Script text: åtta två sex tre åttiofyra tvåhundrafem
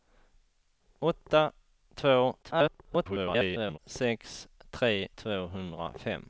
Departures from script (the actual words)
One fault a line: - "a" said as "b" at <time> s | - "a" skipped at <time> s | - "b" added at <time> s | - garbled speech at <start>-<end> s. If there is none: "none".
- garbled speech at 2.4-3.8 s
- "åttiofyra" skipped at 5.1 s